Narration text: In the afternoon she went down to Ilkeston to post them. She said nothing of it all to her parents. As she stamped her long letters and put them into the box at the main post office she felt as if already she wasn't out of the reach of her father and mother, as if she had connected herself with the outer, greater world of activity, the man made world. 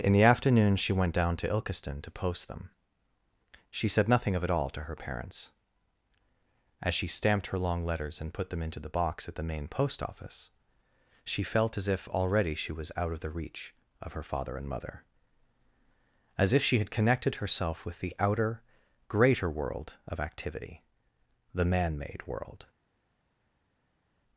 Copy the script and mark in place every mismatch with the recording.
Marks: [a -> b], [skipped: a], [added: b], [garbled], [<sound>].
In the afternoon she went down to Ilkeston to post them. She said nothing of it all to her parents. As she stamped her long letters and put them into the box at the main post office she felt as if already she [wasn't -> was] out of the reach of her father and mother, as if she had connected herself with the outer, greater world of activity, the man made world.